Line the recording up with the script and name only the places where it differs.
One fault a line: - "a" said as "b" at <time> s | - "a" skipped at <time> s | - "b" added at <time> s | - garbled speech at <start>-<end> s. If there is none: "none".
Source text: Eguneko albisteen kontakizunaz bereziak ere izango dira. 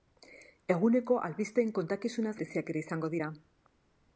none